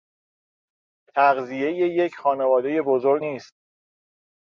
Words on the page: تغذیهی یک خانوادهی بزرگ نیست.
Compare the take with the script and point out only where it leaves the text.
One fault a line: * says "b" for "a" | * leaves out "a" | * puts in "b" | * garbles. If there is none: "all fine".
all fine